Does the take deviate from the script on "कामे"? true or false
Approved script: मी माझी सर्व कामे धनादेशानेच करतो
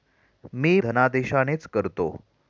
true